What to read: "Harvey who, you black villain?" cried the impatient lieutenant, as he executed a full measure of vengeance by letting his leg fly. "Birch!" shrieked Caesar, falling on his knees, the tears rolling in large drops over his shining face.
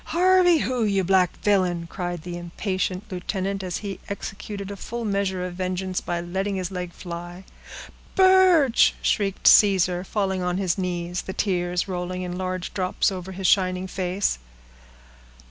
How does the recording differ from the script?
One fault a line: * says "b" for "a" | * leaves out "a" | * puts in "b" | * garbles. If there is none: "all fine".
all fine